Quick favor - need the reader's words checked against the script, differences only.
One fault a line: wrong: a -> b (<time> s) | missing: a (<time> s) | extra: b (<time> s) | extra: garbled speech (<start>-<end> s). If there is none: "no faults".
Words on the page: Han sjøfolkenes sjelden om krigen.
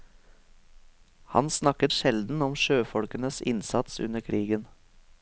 wrong: sjøfolkenes -> snakket (1.5 s)
extra: sjøfolkenes innsats under (2.5 s)